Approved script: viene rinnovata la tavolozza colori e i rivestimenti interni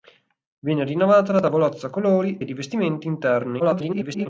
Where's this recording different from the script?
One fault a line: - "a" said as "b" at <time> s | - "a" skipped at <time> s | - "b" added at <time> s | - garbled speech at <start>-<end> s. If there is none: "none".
- "e" skipped at 2.4 s
- garbled speech at 3.6-4.3 s